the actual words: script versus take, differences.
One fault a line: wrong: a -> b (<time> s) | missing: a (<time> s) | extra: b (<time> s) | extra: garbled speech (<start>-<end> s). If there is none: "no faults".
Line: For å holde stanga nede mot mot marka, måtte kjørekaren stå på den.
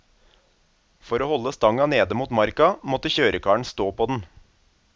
missing: mot (2.3 s)